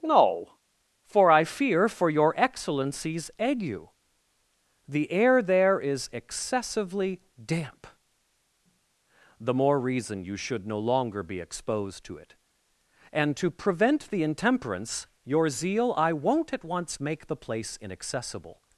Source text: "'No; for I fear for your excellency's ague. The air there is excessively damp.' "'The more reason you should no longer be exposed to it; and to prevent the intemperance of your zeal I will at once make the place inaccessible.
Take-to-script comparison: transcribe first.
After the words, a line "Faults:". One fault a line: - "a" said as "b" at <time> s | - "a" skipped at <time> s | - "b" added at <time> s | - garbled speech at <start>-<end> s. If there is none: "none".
"'No; for I fear for your excellency's ague. The air there is excessively damp.' "'The more reason you should no longer be exposed to it; and to prevent the intemperance your zeal I won't at once make the place inaccessible.
Faults:
- "of" skipped at 15.1 s
- "will" said as "won't" at 16.1 s